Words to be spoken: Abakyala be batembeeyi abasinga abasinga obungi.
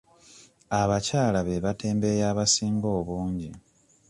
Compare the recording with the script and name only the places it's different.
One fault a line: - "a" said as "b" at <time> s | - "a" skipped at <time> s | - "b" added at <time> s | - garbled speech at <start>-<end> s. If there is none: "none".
- "abasinga" skipped at 2.9 s